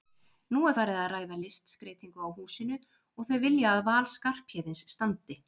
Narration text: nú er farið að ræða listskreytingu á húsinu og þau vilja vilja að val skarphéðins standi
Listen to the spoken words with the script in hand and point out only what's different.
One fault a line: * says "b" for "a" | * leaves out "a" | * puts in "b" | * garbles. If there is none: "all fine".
* leaves out "vilja"